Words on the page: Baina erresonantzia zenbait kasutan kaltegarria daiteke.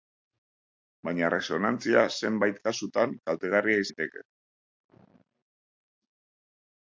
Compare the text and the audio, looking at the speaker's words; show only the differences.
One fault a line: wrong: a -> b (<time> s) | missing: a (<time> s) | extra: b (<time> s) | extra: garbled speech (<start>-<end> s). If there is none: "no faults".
no faults